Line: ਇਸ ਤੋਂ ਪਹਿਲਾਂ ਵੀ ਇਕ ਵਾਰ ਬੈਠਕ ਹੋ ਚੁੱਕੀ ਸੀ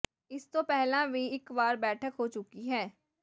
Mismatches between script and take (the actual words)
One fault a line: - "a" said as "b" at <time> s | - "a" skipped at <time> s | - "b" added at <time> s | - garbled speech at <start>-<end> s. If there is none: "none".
- "ਸੀ" said as "ਹੈ" at 2.7 s